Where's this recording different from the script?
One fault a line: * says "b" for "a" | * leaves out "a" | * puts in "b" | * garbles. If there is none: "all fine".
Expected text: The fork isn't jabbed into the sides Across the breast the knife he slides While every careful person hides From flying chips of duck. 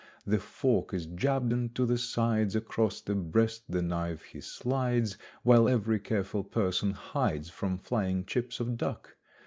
* says "is" for "isn't"